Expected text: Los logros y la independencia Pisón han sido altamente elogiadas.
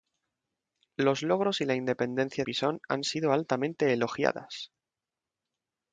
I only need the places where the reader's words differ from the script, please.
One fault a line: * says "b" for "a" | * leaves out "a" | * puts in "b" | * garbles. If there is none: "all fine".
all fine